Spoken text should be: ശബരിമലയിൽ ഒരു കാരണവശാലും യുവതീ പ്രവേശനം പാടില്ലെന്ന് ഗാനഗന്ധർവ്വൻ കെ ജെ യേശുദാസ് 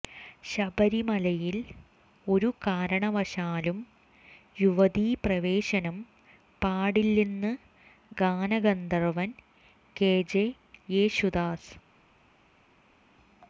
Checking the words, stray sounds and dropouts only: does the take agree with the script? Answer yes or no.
yes